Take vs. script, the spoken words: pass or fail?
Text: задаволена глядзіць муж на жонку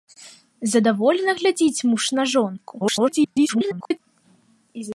fail